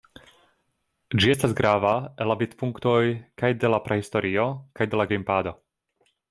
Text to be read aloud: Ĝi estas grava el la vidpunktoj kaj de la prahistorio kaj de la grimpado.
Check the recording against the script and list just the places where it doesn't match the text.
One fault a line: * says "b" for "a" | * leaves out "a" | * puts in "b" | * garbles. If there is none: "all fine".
all fine